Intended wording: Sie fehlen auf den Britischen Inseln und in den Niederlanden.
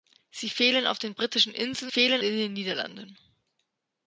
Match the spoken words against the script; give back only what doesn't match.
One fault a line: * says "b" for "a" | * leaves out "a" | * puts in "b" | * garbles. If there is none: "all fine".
* says "fehlen" for "und"